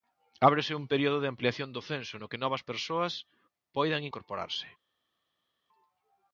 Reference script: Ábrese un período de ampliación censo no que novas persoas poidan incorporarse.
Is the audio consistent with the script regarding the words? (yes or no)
no